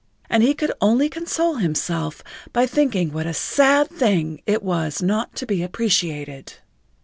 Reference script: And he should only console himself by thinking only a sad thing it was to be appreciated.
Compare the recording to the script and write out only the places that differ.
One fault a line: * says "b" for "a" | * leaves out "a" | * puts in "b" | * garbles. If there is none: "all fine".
* says "could" for "should"
* says "what" for "only"
* puts in "not"